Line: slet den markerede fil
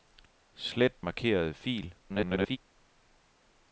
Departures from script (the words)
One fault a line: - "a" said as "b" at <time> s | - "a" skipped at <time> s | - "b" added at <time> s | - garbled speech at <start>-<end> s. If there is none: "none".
- "den" skipped at 1.1 s
- garbled speech at 2.0-2.6 s